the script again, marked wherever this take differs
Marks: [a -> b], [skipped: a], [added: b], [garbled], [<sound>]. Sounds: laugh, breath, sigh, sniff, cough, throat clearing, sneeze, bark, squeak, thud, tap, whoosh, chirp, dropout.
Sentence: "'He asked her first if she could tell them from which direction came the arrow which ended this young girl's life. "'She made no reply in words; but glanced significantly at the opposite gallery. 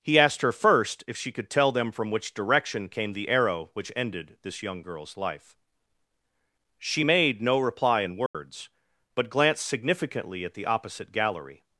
"'He asked her first if she could tell them from which direction came the arrow which ended this young girl's life. "'She made no reply in words; [dropout] but glanced significantly at the opposite gallery.